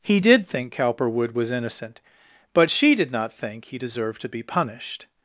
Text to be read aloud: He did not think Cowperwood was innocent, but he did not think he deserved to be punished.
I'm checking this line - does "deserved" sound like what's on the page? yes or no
yes